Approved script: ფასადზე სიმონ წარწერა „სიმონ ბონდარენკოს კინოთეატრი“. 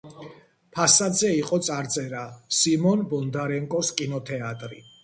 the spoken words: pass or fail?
fail